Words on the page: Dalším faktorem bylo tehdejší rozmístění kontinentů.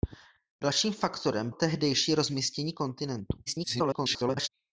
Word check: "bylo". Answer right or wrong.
wrong